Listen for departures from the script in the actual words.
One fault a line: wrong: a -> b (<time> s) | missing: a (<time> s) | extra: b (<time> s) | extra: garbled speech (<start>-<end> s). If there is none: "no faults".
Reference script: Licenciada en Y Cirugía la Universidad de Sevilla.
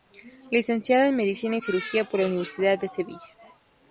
extra: Medicina (1.1 s)
extra: por (2.1 s)